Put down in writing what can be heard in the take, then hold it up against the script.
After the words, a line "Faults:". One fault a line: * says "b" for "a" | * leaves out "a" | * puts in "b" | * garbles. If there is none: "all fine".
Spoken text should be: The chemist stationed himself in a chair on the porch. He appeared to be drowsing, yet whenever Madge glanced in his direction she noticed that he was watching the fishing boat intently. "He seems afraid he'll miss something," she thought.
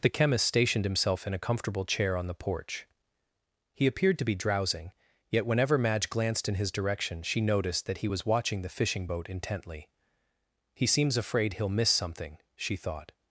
The chemist stationed himself in a comfortable chair on the porch. He appeared to be drowsing, yet whenever Madge glanced in his direction she noticed that he was watching the fishing boat intently. "He seems afraid he'll miss something," she thought.
Faults:
* puts in "comfortable"